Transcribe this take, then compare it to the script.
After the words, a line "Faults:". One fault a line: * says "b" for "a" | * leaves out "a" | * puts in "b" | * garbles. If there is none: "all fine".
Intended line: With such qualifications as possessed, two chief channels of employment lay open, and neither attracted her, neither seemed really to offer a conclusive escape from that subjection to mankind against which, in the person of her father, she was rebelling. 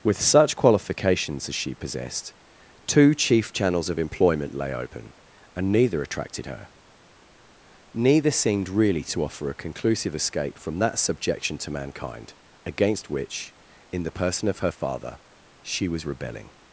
With such qualifications as she possessed, two chief channels of employment lay open, and neither attracted her, neither seemed really to offer a conclusive escape from that subjection to mankind against which, in the person of her father, she was rebelling.
Faults:
* puts in "she"